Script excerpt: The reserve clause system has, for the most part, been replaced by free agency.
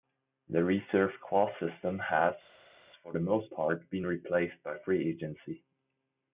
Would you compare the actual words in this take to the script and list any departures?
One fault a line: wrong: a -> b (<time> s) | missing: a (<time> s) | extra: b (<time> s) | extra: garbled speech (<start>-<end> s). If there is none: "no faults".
no faults